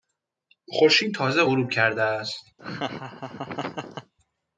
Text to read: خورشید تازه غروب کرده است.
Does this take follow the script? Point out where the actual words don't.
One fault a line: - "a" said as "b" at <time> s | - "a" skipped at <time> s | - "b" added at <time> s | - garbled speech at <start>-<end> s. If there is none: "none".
none